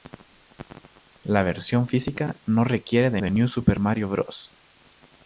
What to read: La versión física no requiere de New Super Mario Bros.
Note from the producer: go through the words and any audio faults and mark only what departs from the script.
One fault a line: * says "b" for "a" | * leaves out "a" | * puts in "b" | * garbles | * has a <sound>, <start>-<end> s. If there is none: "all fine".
* puts in "de"